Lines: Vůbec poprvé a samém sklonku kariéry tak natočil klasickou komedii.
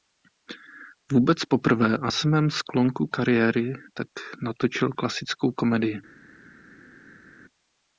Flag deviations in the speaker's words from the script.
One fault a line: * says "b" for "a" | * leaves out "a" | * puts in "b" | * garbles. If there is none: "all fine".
all fine